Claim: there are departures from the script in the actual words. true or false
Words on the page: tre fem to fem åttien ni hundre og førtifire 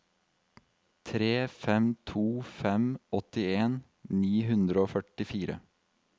false